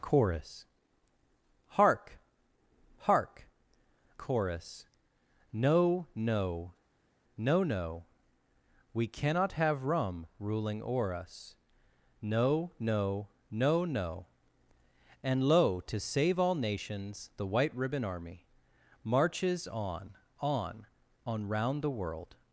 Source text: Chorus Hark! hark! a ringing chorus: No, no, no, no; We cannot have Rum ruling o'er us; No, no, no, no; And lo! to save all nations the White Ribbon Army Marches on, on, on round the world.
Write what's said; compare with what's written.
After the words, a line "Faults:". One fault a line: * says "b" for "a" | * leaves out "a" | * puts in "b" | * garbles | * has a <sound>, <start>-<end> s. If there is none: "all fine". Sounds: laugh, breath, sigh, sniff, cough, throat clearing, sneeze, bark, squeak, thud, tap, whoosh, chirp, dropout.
Chorus Hark! hark! chorus: No, no, no, no; We cannot have Rum ruling o'er us; No, no, no, no; And lo! to save all nations the White Ribbon Army Marches on, on, on round the world.
Faults:
* leaves out "a ringing"